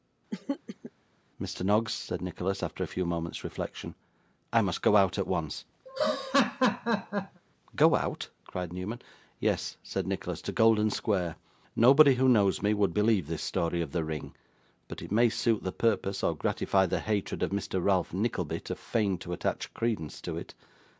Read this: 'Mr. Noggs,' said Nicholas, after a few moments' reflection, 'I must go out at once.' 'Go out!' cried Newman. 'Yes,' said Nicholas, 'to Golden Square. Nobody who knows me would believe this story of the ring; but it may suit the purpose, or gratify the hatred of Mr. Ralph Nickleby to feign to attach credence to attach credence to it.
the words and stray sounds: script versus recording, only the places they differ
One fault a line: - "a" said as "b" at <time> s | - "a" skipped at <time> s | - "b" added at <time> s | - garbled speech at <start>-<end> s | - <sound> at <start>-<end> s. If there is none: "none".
- throat clearing at 0.3-0.9 s
- laugh at 5.9-7.4 s
- "attach credence to" skipped at 20.4 s